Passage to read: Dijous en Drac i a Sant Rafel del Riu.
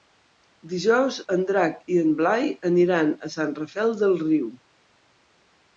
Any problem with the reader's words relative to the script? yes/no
yes